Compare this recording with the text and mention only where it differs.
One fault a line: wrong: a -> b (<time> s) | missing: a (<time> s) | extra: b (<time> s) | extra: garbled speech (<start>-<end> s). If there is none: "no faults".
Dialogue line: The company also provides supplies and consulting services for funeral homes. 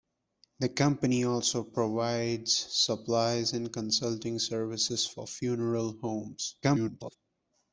extra: garbled speech (6.6-7.2 s)